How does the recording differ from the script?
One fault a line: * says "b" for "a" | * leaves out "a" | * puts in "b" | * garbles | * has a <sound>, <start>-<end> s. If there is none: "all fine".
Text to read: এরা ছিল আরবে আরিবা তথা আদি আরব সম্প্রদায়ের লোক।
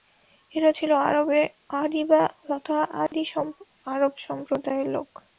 * has a dropout, 3.1-3.1 s